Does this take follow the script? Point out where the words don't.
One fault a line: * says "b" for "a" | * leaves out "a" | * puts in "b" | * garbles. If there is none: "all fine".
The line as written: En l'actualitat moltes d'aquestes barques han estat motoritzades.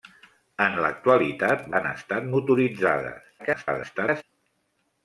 * leaves out "moltes d'aquestes barques"
* garbles